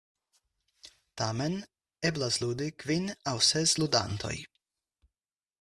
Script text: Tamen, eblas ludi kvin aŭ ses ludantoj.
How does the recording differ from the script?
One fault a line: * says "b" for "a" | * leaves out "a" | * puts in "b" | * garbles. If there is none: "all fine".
all fine